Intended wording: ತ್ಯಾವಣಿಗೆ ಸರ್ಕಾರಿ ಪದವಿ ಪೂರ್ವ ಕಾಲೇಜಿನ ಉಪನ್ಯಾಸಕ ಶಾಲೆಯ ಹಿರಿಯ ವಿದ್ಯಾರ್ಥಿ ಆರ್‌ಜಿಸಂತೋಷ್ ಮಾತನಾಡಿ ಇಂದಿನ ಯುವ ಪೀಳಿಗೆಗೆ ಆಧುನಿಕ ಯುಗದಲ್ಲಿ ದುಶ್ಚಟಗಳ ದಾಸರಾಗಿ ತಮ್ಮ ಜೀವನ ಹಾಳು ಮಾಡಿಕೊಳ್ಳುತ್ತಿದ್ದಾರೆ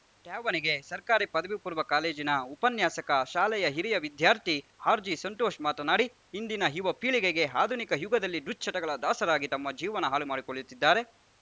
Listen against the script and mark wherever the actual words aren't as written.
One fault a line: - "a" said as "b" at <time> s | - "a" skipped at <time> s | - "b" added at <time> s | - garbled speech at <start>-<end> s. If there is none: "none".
none